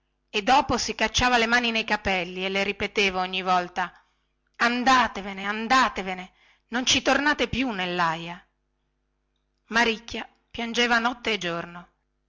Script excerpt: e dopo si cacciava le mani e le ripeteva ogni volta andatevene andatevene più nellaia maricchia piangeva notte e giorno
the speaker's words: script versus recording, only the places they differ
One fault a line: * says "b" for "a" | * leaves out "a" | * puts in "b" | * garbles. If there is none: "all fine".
* puts in "nei capelli"
* puts in "non ci tornate"